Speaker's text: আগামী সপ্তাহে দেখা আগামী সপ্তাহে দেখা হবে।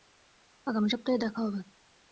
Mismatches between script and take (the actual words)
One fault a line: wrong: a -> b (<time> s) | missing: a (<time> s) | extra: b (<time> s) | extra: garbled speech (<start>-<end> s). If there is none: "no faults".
missing: আগামী সপ্তাহে দেখা (1.4 s)